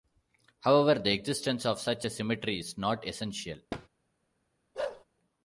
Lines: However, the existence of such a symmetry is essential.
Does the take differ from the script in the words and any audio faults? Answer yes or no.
yes